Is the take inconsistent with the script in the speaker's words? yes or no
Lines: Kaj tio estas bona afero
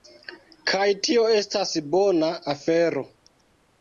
no